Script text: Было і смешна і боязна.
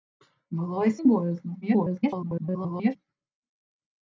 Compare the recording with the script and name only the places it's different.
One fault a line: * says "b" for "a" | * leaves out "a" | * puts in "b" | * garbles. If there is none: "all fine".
* leaves out "смешна"
* garbles